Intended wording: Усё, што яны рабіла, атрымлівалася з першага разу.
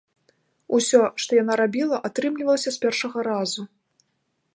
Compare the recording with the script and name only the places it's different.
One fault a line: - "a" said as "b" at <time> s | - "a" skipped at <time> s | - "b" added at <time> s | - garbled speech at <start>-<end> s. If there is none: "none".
- "яны" said as "яна" at 1.4 s